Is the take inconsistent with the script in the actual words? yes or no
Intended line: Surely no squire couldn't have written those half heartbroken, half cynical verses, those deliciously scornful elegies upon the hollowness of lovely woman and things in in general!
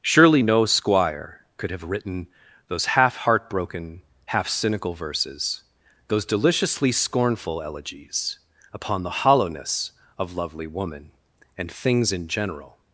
yes